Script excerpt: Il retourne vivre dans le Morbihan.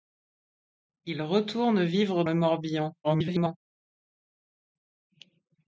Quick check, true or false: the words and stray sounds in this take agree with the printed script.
false